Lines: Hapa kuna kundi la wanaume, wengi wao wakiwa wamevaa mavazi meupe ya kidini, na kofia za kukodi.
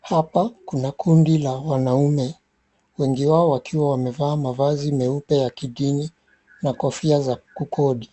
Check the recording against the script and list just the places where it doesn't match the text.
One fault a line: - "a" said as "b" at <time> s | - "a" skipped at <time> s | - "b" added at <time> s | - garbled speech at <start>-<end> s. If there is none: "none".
none